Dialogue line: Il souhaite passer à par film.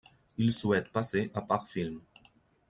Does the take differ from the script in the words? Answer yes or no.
no